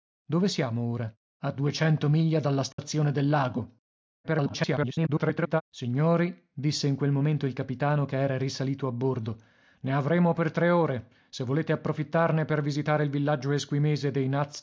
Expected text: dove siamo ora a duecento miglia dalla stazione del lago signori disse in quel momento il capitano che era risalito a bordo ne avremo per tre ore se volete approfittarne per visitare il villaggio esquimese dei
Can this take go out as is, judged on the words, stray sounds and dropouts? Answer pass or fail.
fail